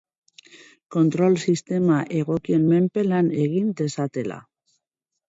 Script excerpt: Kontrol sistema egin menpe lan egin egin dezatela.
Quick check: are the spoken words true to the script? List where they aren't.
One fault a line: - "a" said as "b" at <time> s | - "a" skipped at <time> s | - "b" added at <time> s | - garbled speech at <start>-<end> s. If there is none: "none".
- "egin" said as "egokien" at 2.2 s
- "egin" skipped at 3.7 s